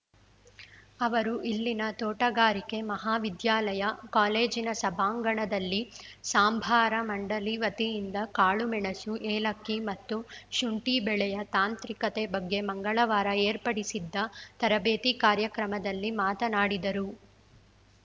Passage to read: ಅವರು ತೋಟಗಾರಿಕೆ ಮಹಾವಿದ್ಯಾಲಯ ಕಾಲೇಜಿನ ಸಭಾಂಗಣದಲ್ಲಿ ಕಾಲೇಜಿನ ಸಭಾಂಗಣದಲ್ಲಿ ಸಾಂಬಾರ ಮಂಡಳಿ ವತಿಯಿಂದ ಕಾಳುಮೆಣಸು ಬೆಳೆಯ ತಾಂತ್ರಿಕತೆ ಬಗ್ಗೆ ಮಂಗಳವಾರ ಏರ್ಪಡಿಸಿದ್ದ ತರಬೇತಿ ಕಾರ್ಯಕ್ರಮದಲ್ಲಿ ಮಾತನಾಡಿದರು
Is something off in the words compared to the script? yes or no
yes